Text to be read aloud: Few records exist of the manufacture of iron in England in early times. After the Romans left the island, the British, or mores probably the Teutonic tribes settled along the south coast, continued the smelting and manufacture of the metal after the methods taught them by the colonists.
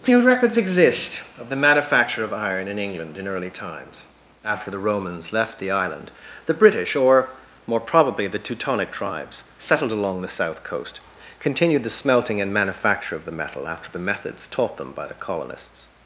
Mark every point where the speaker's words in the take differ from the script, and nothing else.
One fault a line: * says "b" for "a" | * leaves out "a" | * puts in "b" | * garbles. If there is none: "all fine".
* says "more" for "mores"